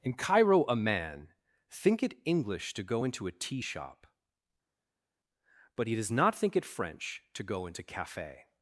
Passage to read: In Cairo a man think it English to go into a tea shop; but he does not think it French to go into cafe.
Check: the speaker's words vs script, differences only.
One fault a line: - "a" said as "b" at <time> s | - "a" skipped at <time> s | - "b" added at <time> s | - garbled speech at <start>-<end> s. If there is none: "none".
none